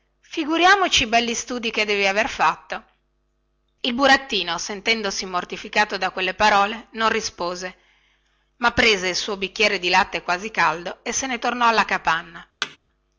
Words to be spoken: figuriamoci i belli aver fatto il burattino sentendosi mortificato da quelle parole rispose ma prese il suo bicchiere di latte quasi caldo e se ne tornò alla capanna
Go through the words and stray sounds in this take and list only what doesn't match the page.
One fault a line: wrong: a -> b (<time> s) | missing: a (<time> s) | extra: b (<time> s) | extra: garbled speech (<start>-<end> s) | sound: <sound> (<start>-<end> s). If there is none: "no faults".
extra: studi che devi (1.4 s)
extra: non (6.9 s)
sound: thud (12.6-12.8 s)